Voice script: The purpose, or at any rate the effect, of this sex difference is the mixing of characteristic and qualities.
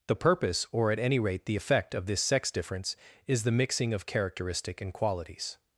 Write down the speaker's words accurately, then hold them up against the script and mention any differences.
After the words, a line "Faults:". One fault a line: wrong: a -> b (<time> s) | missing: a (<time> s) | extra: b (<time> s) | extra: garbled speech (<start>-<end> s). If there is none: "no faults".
The purpose, or at any rate the effect, of this sex difference is the mixing of characteristic and qualities.
Faults:
no faults